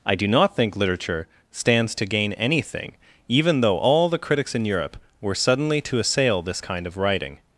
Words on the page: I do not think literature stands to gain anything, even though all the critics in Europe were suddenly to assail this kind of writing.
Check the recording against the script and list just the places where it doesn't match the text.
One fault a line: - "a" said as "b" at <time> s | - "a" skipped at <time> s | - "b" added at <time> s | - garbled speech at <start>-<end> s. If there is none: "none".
none